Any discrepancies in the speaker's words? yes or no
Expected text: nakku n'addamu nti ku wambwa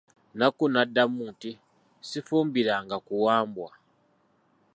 yes